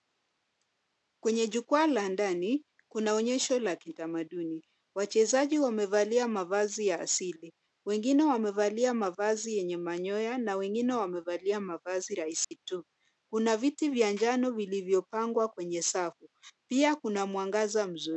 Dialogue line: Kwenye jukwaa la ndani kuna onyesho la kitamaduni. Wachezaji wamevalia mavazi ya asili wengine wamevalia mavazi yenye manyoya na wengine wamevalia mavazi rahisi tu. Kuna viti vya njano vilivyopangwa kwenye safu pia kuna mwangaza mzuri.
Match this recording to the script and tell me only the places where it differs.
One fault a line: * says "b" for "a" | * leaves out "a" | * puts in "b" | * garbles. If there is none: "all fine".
all fine